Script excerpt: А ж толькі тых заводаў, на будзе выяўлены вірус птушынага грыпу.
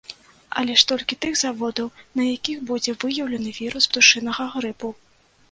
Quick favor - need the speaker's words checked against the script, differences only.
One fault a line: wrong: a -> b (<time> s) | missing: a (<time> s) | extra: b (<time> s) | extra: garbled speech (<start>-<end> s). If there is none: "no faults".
wrong: А -> Але (0.6 s)
extra: якіх (2.4 s)